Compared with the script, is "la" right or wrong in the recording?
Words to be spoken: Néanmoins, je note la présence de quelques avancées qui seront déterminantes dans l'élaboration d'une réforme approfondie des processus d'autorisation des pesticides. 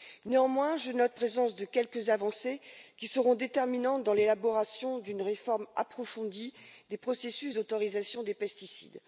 wrong